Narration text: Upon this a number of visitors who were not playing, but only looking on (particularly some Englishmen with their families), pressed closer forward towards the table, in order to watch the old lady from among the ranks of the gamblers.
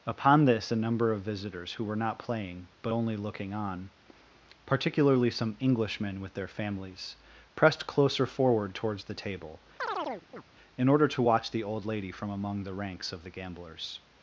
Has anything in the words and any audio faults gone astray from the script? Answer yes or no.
yes